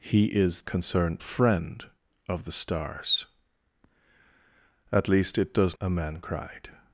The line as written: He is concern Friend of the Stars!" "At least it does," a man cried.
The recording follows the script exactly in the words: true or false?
true